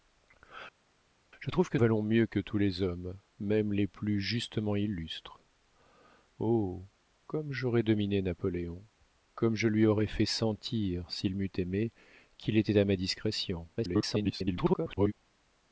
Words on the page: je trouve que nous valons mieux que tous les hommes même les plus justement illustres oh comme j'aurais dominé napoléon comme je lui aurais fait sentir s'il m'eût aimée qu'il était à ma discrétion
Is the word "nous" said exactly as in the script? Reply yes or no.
no